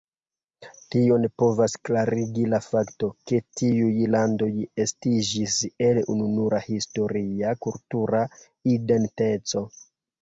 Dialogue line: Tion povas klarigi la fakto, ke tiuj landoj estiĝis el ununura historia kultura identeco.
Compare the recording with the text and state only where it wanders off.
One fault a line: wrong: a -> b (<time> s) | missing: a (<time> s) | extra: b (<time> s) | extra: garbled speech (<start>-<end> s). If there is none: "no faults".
no faults